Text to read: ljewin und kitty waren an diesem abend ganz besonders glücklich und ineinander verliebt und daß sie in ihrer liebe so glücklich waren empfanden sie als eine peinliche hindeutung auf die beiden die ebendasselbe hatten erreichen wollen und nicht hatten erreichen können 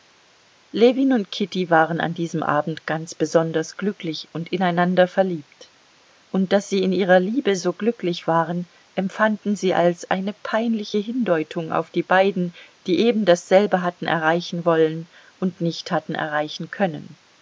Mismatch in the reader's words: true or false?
false